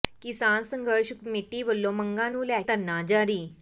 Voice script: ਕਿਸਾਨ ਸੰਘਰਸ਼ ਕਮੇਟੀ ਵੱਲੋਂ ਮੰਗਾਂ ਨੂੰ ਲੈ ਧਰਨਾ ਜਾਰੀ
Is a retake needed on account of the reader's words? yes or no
no